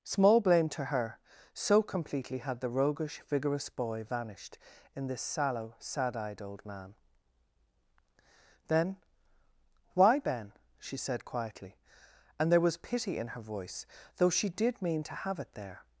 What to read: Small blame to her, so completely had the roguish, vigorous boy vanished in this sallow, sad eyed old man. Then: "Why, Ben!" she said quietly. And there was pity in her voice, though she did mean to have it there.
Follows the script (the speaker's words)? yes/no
yes